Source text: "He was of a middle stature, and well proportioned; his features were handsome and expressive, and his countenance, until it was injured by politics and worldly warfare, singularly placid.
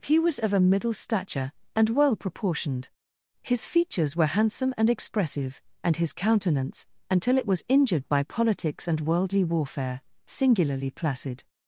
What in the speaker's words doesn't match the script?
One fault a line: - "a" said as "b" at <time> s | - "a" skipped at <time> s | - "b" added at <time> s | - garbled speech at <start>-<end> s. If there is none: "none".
none